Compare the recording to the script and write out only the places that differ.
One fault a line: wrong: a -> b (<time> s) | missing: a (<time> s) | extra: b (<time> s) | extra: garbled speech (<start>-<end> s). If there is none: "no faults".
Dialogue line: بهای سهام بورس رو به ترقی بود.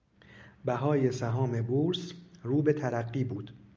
no faults